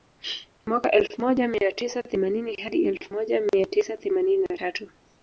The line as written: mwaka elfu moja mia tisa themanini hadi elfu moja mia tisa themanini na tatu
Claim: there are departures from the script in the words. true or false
false